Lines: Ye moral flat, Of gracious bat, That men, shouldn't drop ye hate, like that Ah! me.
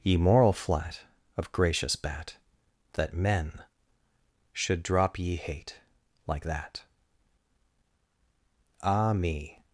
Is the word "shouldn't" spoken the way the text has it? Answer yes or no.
no